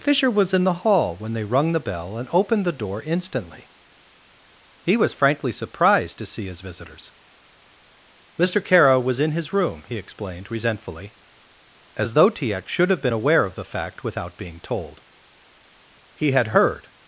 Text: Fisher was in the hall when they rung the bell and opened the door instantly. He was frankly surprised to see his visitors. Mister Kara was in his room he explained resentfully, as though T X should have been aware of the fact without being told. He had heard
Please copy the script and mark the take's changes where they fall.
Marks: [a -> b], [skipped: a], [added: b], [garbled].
Fisher was in the hall when they rung the bell and opened the door instantly. He was frankly surprised to see his visitors. Mister Kara was in his room he explained resentfully, as though T X should have been aware of the fact without being told. He had heard